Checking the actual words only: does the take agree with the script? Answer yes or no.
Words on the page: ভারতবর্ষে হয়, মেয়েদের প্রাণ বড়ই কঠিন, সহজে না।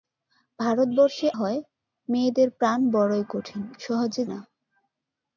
yes